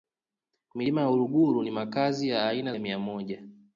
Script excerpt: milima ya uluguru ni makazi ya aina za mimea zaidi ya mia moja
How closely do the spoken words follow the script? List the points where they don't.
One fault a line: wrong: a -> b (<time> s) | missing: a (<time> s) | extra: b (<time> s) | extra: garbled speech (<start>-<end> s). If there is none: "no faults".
missing: za mimea zaidi (2.8 s)